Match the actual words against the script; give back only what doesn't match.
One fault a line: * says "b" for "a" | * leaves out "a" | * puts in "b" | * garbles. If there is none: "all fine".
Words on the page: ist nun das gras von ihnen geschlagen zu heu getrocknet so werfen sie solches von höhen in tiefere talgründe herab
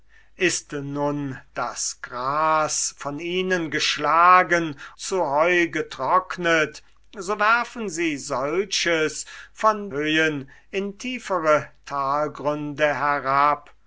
all fine